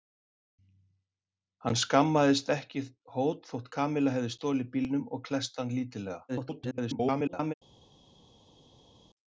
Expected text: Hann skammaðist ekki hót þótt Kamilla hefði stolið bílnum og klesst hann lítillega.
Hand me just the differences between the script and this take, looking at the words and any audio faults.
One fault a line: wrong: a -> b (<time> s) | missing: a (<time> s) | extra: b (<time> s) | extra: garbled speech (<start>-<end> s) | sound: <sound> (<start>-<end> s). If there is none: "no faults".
extra: garbled speech (6.3-7.5 s)